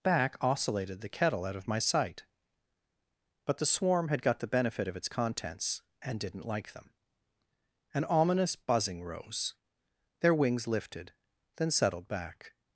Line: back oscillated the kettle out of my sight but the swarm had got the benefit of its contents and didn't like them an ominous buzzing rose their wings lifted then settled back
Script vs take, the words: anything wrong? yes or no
no